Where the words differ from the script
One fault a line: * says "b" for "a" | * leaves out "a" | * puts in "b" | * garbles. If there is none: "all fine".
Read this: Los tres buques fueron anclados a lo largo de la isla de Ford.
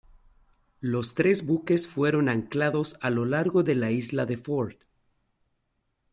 all fine